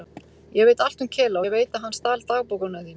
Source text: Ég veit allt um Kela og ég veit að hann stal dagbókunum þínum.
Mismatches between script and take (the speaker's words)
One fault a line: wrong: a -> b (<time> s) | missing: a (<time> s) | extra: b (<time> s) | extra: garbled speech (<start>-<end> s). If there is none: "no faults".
missing: og (1.4 s)